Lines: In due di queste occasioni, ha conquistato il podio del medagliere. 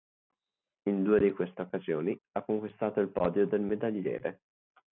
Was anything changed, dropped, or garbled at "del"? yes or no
no